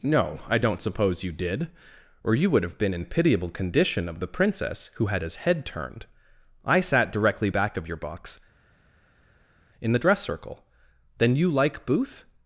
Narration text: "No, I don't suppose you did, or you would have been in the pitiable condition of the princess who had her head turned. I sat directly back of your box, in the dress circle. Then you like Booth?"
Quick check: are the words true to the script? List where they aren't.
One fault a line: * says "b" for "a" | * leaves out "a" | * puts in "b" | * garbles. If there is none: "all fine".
* leaves out "the"
* says "his" for "her"